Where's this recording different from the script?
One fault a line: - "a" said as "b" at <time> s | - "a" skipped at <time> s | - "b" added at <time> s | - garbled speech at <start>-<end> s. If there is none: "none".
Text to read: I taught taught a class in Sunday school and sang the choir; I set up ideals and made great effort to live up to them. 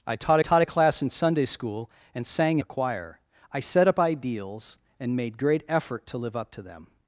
none